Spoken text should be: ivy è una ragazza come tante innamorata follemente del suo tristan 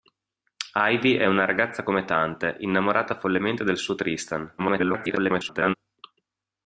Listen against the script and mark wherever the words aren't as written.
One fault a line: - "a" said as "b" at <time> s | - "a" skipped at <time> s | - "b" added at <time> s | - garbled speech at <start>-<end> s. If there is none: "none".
- garbled speech at 4.6-5.7 s